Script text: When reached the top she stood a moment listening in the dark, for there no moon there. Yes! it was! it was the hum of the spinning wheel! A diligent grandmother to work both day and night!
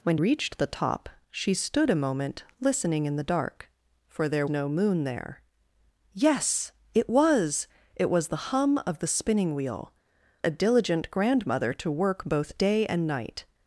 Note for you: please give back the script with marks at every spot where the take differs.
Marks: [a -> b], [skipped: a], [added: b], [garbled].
When reached the top she stood a moment listening in the dark, for there no moon there. Yes! it was! it was the hum of the spinning wheel! A diligent grandmother to work both day and night!